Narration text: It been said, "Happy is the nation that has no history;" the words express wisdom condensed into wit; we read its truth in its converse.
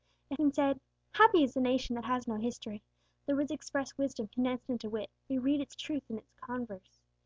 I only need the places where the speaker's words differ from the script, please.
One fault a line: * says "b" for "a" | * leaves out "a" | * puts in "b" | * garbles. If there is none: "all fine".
all fine